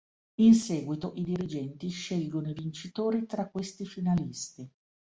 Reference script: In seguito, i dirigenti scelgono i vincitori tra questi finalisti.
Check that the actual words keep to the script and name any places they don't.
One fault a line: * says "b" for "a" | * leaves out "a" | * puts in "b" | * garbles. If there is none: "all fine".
all fine